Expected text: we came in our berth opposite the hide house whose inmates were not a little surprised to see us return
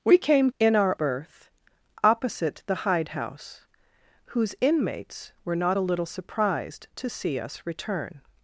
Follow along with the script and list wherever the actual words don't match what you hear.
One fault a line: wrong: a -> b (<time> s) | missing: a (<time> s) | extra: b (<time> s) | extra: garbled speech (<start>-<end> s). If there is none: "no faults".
no faults